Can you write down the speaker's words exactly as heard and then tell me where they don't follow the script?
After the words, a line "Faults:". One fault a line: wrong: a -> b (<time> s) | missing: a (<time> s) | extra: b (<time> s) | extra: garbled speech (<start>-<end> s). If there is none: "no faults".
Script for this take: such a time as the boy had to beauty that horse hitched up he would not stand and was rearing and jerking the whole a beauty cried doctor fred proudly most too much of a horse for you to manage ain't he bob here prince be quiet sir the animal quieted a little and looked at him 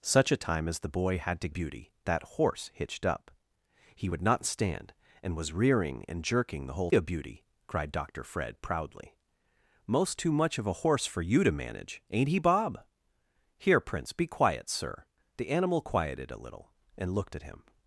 such a time as the boy had to beauty that horse hitched up he would not stand and was rearing and jerking the whole a beauty cried doctor fred proudly most too much of a horse for you to manage ain't he bob here prince be quiet sir the animal quieted a little and looked at him
Faults:
no faults